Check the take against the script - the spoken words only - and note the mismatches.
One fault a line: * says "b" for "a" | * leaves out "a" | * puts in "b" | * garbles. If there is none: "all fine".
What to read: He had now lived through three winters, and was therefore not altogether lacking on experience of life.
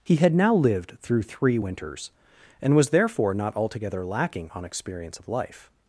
all fine